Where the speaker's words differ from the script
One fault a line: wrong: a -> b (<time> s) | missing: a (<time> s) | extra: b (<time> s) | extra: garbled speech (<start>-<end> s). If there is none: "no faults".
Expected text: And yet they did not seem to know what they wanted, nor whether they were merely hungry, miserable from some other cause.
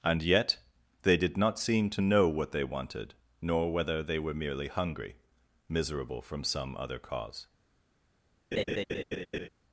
no faults